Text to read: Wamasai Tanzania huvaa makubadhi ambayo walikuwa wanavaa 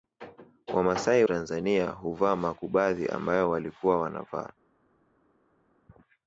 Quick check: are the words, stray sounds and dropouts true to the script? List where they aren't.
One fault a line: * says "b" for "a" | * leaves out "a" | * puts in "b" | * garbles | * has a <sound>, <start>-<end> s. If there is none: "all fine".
all fine